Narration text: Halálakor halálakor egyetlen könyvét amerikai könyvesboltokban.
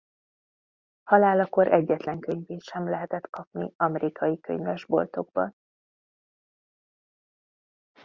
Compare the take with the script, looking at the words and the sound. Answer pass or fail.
fail